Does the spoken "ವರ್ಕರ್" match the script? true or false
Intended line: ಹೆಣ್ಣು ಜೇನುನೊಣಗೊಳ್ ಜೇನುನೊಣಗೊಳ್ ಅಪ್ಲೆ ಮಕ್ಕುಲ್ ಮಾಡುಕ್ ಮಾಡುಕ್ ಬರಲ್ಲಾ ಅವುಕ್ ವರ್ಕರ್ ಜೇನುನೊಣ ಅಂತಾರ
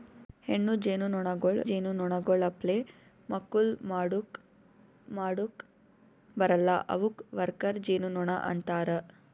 true